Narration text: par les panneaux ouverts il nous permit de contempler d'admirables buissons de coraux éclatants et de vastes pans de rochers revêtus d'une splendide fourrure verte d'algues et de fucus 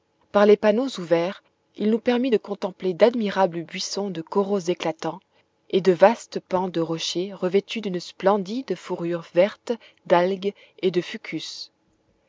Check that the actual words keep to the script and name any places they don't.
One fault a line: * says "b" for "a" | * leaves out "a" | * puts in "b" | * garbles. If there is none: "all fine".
all fine